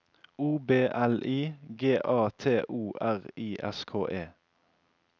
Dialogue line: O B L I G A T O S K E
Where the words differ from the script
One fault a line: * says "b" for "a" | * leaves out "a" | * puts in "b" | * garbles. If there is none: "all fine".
* puts in "R I"